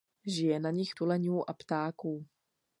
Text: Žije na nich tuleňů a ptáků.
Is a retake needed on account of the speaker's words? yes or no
no